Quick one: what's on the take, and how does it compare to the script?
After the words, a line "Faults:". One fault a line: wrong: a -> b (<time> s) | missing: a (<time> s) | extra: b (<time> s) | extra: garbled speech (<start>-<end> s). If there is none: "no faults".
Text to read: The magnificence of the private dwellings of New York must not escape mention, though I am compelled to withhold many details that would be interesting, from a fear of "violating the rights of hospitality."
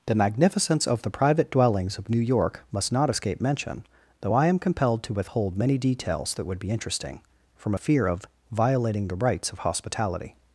The magnificence of the private dwellings of New York must not escape mention, though I am compelled to withhold many details that would be interesting, from a fear of "violating the rights of hospitality."
Faults:
no faults